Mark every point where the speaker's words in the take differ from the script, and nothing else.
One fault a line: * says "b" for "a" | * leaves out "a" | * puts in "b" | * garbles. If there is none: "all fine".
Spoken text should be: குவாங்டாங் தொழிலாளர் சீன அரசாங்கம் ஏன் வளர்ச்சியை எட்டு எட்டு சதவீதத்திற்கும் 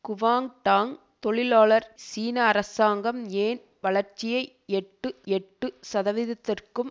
all fine